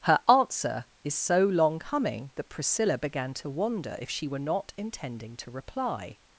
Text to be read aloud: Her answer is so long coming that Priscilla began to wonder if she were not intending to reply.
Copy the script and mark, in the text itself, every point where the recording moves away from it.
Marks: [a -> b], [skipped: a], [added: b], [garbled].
Her answer is so long coming that Priscilla began to wonder if she were not intending to reply.